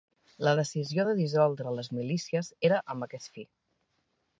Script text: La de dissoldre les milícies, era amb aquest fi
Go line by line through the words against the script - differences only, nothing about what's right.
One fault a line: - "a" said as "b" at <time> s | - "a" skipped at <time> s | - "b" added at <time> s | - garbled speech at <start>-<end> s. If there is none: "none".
- "decisió" added at 0.6 s